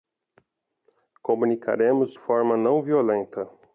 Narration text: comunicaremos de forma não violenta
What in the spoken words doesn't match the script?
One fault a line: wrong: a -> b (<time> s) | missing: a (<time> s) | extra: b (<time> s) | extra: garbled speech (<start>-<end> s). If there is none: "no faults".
missing: de (2.1 s)